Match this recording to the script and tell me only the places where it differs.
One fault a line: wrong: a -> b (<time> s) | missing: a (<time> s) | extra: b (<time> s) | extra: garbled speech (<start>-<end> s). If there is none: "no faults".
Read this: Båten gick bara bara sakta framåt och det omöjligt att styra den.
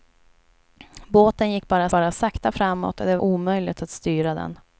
no faults